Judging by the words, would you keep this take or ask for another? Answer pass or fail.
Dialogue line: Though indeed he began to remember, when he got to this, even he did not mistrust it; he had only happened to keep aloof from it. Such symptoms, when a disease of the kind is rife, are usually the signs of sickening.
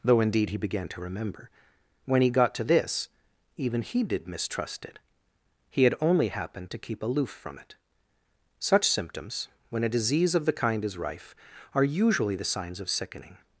fail